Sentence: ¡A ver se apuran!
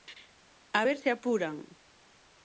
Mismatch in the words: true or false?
false